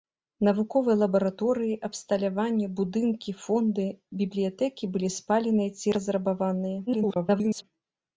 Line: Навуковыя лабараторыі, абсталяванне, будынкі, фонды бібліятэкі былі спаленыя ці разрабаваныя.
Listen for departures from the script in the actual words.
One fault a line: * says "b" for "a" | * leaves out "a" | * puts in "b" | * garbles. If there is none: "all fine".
* garbles